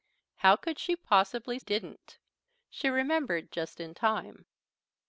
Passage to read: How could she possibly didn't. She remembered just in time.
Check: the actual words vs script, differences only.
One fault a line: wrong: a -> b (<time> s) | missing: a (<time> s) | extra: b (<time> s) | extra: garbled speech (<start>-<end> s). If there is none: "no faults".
no faults